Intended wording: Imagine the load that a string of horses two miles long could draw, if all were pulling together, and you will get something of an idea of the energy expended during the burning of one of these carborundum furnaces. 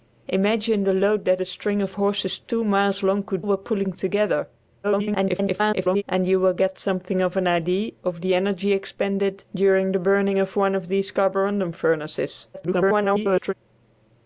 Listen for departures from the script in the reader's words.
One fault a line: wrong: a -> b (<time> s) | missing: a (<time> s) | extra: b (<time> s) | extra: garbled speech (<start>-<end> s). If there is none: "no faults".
missing: draw if all (3.4 s)
extra: garbled speech (4.8-6.0 s)
extra: garbled speech (12.5-13.5 s)